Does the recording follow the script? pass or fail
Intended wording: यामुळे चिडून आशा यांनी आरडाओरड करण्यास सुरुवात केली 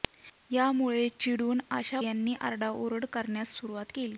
pass